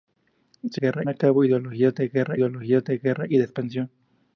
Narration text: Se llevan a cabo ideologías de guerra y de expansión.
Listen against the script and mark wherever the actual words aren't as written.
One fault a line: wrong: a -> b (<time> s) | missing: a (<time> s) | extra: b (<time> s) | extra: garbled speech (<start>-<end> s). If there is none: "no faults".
wrong: llevan -> guerra (0.8 s)
extra: ideologías de guerra (2.3 s)